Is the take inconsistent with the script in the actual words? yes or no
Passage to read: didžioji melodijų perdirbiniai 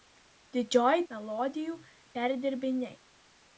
no